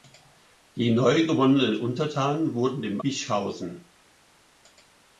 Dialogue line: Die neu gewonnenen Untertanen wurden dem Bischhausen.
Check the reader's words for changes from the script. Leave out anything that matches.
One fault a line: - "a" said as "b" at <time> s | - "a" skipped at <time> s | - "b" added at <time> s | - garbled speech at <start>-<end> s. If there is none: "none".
none